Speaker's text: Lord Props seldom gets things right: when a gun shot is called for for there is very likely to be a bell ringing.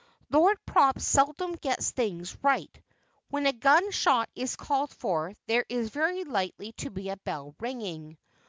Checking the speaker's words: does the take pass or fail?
fail